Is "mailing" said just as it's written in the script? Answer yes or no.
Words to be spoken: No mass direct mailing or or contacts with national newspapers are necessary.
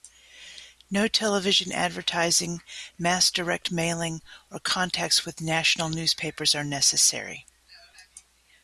yes